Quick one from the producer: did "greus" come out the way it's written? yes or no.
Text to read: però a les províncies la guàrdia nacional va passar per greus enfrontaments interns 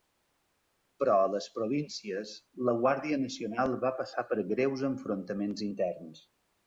yes